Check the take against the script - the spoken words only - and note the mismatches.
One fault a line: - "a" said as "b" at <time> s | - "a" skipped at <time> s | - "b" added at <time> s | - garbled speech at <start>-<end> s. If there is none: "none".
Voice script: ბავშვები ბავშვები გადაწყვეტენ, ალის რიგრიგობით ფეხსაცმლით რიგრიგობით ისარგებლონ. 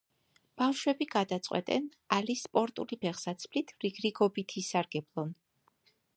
- "ბავშვები" skipped at 1.1 s
- "რიგრიგობით" said as "სპორტული" at 2.4 s